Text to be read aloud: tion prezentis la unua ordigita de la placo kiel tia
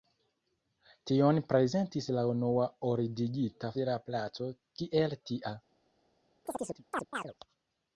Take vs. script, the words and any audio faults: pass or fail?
fail